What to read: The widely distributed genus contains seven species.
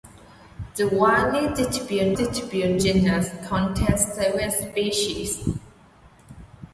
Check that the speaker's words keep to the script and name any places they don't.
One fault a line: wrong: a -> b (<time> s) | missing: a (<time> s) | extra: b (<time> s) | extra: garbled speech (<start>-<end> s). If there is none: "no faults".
extra: distributed (2.1 s)